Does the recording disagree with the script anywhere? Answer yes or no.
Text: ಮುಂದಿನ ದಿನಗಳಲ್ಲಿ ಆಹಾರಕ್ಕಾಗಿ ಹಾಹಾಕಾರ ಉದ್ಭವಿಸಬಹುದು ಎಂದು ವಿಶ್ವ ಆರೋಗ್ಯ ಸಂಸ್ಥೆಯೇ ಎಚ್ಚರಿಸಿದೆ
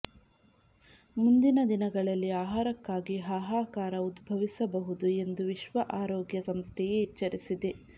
no